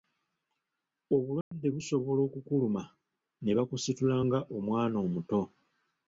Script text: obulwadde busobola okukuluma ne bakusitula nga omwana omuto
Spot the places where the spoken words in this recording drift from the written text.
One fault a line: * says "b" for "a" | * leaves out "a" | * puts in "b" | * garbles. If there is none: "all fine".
all fine